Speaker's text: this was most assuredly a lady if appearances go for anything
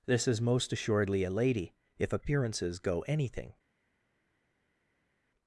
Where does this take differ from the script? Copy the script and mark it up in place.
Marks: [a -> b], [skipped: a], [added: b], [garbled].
this [was -> is] most assuredly a lady if appearances go [skipped: for] anything